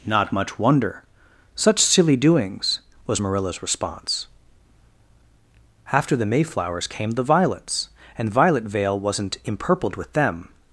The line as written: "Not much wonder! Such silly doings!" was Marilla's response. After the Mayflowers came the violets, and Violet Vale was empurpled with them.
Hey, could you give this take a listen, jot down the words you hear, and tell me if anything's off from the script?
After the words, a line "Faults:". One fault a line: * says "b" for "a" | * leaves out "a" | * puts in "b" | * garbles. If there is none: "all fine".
"Not much wonder! Such silly doings!" was Marilla's response. After the Mayflowers came the violets, and Violet Vale wasn't empurpled with them.
Faults:
* says "wasn't" for "was"